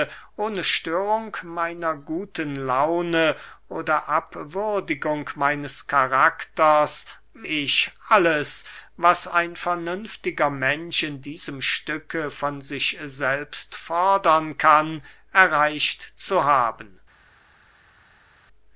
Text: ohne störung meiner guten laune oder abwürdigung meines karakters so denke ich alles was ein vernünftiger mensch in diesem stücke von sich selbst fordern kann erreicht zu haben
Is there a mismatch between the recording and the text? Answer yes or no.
yes